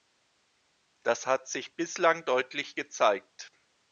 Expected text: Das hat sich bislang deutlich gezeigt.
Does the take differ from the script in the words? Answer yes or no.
no